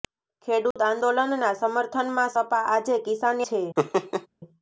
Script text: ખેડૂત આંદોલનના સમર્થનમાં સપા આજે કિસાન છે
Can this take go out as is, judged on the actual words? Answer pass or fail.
pass